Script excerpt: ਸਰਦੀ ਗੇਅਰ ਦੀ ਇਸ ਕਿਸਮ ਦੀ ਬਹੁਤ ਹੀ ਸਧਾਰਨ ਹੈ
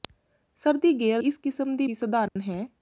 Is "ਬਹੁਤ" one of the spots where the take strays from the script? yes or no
yes